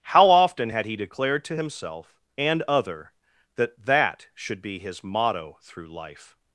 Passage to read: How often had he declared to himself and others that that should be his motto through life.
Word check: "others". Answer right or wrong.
wrong